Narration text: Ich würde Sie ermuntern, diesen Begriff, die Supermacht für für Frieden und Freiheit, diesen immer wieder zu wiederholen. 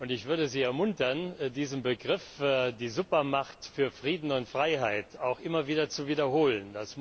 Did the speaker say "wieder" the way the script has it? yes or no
yes